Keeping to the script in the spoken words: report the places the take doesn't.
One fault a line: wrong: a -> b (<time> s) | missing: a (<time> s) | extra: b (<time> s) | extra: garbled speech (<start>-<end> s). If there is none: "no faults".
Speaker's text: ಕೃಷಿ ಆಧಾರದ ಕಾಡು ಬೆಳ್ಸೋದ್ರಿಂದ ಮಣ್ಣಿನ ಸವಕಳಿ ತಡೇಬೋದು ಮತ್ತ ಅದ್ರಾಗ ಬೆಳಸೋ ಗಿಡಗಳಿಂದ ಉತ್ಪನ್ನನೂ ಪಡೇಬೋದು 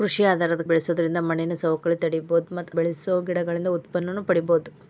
missing: ಕಾಡು (0.6 s)
missing: ಅದ್ರಾಗ (2.8 s)